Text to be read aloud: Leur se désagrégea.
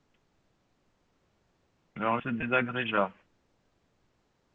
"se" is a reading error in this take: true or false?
false